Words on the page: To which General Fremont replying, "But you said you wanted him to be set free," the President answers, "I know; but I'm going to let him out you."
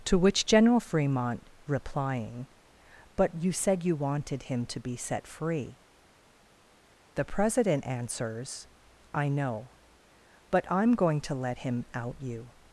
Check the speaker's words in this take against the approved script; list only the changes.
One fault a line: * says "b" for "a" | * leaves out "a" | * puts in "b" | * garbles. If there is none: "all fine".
all fine